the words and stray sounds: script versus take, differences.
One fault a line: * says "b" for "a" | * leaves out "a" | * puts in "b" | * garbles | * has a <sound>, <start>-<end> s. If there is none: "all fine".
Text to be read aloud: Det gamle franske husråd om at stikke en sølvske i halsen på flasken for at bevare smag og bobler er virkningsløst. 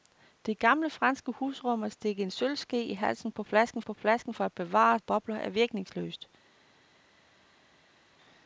* puts in "på flasken"
* leaves out "smag"